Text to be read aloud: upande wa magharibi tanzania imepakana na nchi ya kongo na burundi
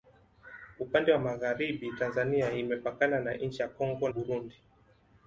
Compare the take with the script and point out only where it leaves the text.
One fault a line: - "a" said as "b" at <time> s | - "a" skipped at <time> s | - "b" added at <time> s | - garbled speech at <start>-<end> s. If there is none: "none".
- "na" skipped at 4.1 s